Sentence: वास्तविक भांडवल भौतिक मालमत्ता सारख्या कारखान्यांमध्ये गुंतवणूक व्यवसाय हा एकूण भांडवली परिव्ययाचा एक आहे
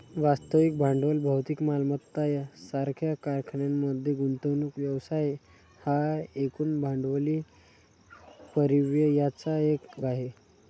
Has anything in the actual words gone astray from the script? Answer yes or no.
no